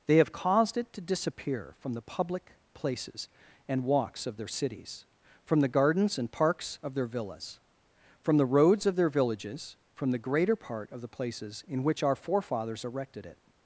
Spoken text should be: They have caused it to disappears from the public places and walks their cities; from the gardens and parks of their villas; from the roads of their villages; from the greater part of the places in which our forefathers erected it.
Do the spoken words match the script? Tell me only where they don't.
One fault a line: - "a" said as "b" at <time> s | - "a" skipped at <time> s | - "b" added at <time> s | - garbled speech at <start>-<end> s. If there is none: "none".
- "disappears" said as "disappear" at 1.0 s
- "of" added at 4.2 s